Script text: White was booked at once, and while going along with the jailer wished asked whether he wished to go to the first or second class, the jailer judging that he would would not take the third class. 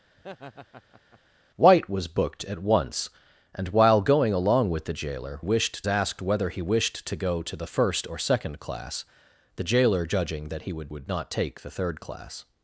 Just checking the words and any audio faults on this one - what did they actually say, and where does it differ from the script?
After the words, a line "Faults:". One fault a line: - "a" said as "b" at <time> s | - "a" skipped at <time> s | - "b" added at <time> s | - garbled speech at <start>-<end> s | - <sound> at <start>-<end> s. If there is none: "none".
White was booked at once, and while going along with the jailer wished asked whether he wished to go to the first or second class, the jailer judging that he would would not take the third class.
Faults:
- laugh at 0.2-1.2 s